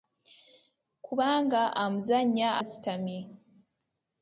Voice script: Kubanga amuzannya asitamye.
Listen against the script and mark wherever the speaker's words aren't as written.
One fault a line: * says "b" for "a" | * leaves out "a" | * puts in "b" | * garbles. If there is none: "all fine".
all fine